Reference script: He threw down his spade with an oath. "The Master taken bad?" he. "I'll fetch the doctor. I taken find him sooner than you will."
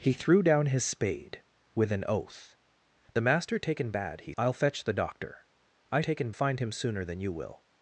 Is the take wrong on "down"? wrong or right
right